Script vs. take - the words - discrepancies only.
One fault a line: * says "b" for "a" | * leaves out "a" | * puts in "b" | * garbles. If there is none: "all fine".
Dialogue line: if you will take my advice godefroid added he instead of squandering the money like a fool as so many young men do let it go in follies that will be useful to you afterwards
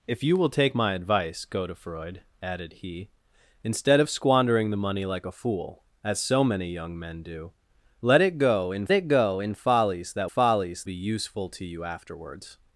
* puts in "it go in"
* says "follies" for "will"